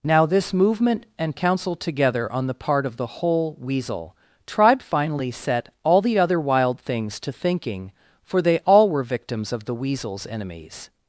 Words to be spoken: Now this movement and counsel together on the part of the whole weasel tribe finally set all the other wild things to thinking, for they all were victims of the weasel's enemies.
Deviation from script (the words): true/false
false